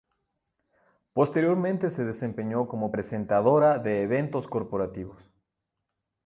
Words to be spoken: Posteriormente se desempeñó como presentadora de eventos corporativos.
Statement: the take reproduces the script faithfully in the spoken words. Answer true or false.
true